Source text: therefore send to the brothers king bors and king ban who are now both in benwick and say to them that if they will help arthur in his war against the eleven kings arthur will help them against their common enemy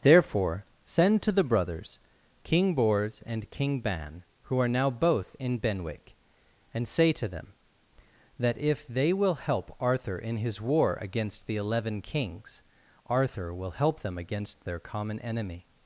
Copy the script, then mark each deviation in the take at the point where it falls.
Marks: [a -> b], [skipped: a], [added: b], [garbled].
therefore send to the brothers king bors and king ban who are now both in benwick and say to them that if they will help arthur in his war against the eleven kings arthur will help them against their common enemy